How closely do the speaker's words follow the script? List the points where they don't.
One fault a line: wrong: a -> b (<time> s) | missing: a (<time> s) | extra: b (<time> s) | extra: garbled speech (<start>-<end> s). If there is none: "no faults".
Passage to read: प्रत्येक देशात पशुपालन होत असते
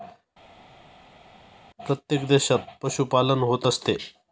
no faults